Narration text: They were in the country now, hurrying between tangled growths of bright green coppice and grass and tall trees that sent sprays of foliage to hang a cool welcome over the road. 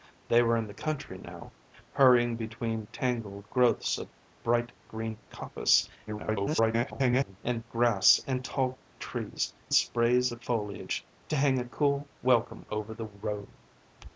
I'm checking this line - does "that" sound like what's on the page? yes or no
no